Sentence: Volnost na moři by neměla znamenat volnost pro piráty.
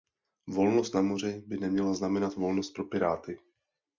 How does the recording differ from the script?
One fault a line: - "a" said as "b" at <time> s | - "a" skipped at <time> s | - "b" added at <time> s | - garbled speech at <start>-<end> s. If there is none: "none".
none